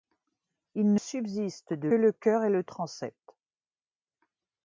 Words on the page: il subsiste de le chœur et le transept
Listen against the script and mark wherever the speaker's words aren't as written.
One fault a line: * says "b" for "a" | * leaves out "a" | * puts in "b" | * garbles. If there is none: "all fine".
all fine